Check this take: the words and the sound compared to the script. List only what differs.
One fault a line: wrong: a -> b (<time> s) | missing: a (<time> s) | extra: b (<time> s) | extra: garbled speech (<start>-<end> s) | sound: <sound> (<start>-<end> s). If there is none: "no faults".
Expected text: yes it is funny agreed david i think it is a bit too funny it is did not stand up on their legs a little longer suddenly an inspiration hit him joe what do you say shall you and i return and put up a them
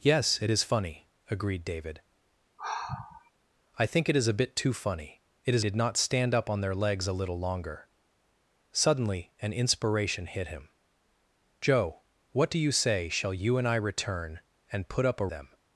sound: sigh (2.6-3.3 s)